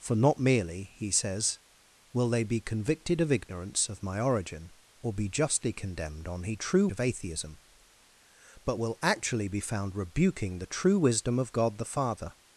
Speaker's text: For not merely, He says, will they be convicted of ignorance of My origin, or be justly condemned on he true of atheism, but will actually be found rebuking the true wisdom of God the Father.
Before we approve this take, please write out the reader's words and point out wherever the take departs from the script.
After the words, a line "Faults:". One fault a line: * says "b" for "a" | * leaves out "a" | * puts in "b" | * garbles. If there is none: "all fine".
For not merely, He says, will they be convicted of ignorance of My origin, or be justly condemned on he true of atheism, but will actually be found rebuking the true wisdom of God the Father.
Faults:
all fine